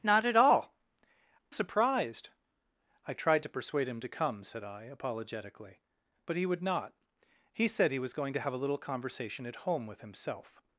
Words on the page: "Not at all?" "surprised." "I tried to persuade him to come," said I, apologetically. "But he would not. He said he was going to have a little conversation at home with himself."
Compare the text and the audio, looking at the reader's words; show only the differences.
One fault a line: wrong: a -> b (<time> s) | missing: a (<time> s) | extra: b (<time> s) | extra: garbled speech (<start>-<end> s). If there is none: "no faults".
no faults